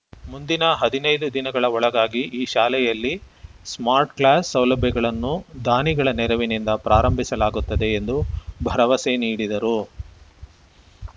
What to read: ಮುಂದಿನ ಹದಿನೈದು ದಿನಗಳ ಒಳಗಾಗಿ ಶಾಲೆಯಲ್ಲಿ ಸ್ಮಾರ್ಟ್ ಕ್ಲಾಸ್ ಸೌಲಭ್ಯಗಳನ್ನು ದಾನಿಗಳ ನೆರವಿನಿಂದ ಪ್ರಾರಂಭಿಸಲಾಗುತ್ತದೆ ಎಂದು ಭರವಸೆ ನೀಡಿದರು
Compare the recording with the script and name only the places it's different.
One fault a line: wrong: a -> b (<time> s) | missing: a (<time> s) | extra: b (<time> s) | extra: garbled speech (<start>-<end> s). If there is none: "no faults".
extra: ಈ (2.4 s)